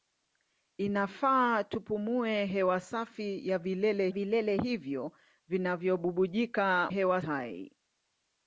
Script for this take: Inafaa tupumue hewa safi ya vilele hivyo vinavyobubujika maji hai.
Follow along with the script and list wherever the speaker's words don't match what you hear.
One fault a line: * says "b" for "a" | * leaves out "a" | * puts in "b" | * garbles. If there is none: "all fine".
* puts in "vilele"
* says "hewa" for "maji"